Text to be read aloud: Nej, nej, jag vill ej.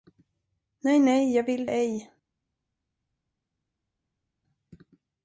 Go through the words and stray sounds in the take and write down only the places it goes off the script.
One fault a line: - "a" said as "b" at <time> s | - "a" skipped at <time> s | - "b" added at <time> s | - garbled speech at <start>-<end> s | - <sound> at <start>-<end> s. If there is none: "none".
none